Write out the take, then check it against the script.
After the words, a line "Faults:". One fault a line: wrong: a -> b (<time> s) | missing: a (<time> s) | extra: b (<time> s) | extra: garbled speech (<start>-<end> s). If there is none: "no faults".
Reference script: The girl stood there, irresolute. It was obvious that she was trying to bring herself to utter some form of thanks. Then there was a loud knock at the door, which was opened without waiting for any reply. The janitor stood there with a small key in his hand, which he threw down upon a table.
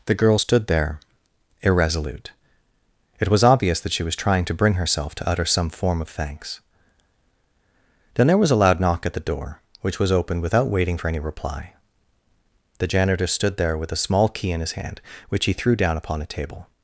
The girl stood there, irresolute. It was obvious that she was trying to bring herself to utter some form of thanks. Then there was a loud knock at the door, which was opened without waiting for any reply. The janitor stood there with a small key in his hand, which he threw down upon a table.
Faults:
no faults